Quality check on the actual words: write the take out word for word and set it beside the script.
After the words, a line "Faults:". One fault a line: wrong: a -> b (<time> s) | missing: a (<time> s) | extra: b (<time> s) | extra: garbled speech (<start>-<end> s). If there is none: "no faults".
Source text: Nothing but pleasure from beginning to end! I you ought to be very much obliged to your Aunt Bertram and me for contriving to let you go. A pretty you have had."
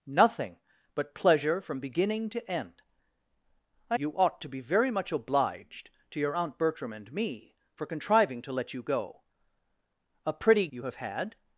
Nothing but pleasure from beginning to end! I you ought to be very much obliged to your Aunt Bertram and me for contriving to let you go. A pretty you have had."
Faults:
no faults